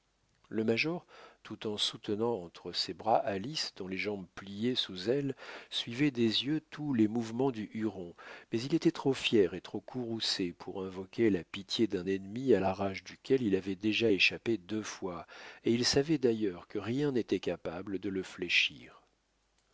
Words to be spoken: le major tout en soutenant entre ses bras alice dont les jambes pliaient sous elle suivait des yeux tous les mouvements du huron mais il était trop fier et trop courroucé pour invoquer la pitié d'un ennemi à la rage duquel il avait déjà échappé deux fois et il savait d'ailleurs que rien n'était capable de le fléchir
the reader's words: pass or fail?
pass